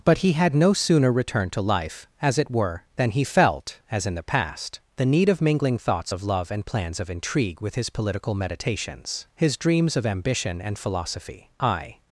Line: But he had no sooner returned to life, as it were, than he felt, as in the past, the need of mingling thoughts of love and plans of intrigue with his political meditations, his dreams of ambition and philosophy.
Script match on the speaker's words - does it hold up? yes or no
no